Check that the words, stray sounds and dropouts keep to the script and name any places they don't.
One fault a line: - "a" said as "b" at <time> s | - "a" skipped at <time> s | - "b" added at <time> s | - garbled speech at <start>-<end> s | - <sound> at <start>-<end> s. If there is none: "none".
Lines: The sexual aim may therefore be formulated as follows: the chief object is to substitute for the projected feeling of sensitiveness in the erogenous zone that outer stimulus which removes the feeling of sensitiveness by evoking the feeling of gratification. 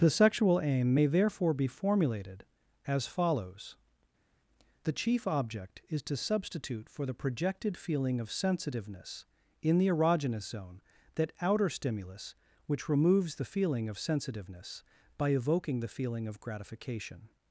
none